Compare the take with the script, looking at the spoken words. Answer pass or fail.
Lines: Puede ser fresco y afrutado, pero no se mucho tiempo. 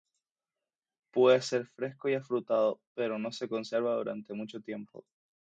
fail